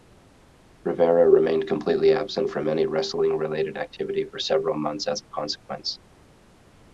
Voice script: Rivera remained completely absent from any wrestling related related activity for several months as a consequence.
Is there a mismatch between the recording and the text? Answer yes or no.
yes